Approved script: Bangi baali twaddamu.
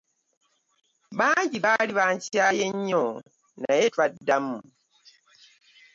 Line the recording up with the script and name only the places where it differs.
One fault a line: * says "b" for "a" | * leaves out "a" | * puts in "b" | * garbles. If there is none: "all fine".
* puts in "bankyaye nnyo naye"